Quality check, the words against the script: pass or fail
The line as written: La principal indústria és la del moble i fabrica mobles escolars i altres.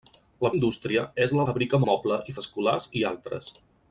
fail